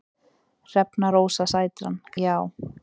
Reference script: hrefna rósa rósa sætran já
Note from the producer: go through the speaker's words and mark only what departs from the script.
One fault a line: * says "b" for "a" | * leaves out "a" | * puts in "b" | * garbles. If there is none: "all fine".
* leaves out "rósa"